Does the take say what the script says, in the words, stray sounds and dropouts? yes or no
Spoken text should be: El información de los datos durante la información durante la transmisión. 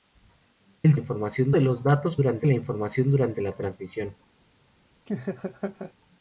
no